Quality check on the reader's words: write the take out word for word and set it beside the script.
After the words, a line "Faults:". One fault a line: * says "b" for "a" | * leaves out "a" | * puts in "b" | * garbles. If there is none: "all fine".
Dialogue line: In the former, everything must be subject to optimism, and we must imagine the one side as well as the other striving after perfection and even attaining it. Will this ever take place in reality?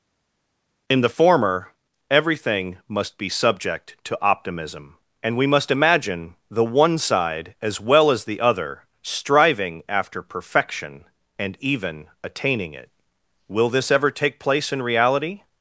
In the former, everything must be subject to optimism, and we must imagine the one side as well as the other striving after perfection and even attaining it. Will this ever take place in reality?
Faults:
all fine